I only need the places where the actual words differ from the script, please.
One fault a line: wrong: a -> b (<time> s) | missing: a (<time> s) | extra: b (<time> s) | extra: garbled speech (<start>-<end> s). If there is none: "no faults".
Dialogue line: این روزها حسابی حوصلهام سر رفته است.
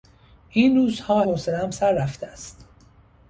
missing: حسابی (1.2 s)